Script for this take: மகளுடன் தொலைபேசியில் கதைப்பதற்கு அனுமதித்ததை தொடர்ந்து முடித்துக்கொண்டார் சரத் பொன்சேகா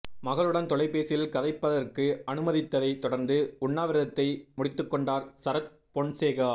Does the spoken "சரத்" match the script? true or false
true